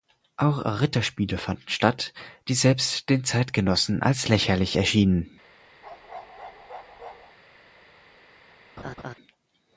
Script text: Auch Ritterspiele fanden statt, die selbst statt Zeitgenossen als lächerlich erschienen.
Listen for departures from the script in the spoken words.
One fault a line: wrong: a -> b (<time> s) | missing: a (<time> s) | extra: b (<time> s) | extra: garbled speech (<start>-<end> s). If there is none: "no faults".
wrong: statt -> den (3.1 s)